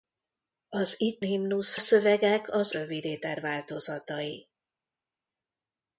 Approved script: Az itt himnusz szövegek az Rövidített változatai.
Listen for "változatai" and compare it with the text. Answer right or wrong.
right